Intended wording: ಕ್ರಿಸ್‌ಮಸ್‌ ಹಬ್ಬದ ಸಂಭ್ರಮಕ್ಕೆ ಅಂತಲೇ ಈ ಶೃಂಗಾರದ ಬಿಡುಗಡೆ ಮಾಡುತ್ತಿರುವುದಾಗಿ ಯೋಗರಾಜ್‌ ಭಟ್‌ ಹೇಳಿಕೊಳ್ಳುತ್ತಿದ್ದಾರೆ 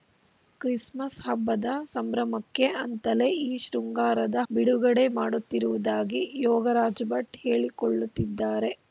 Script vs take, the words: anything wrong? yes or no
no